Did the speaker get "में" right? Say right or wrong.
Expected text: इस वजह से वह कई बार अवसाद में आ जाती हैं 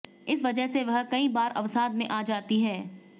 right